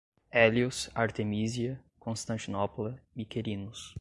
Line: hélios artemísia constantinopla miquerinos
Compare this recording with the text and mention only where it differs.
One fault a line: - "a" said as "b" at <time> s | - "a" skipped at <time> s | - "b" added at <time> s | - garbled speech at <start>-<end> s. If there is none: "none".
none